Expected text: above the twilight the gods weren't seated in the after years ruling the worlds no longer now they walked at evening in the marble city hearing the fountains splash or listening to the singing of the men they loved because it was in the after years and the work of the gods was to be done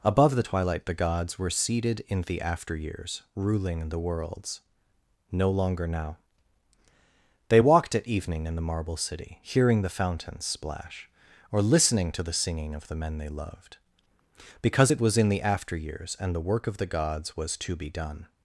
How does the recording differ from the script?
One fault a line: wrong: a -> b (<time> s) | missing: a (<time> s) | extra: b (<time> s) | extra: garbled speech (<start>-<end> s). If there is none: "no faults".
wrong: weren't -> were (1.4 s)